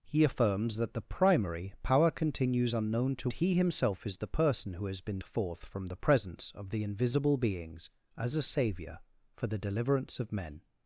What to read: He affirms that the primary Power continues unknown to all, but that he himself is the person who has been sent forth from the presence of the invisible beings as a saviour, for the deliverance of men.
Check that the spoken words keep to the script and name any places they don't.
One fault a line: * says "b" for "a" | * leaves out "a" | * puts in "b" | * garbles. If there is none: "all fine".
* leaves out "all but that"
* leaves out "sent"